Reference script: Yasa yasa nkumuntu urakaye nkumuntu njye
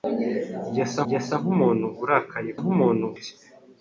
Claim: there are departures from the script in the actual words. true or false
false